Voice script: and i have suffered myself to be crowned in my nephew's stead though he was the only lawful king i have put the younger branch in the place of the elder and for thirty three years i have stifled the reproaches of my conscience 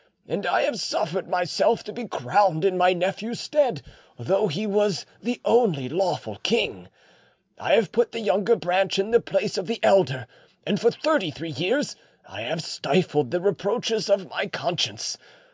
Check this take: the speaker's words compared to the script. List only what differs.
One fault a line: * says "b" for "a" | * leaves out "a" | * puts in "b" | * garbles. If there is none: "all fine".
all fine